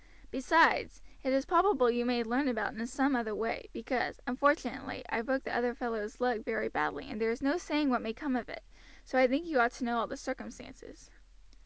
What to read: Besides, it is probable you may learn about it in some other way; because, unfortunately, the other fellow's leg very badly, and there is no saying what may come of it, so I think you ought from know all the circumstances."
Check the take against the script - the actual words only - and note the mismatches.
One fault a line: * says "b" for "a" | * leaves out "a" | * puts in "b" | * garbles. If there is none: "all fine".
* puts in "I broke"
* says "to" for "from"